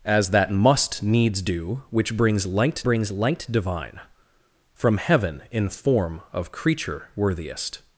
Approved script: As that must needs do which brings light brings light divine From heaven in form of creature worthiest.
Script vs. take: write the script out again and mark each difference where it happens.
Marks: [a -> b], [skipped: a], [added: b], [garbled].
As that must needs do which brings light brings light divine From heaven in form of creature worthiest.